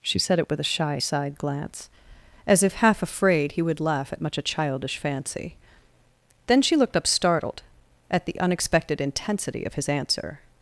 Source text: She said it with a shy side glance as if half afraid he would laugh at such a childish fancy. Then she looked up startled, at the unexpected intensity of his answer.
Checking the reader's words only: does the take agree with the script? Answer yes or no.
no